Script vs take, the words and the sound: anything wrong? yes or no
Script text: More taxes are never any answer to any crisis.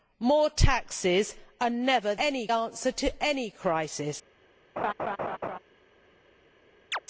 yes